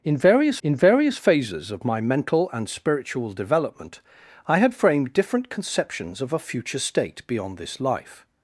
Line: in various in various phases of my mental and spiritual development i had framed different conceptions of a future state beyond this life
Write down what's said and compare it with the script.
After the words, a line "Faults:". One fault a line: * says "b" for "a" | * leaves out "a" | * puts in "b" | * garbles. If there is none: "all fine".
in various in various phases of my mental and spiritual development i had framed different conceptions of a future state beyond this life
Faults:
all fine